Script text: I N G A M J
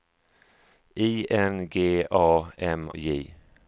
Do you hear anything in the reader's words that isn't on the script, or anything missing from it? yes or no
no